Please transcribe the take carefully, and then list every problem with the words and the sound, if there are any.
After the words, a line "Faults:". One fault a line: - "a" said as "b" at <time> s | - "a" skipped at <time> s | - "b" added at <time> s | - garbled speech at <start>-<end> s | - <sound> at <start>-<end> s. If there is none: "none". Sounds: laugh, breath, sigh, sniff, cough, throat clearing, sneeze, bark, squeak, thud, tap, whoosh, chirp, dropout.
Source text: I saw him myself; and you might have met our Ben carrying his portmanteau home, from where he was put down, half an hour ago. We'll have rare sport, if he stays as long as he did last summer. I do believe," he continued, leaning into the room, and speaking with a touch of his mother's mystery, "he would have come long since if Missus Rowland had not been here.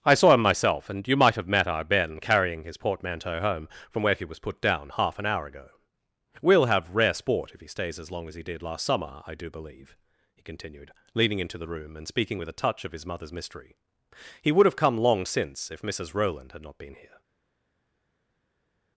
I saw him myself; and you might have met our Ben carrying his portmanteau home, from where he was put down, half an hour ago. We'll have rare sport, if he stays as long as he did last summer. I do believe," he continued, leaning into the room, and speaking with a touch of his mother's mystery, "he would have come long since if Missus Rowland had not been here.
Faults:
none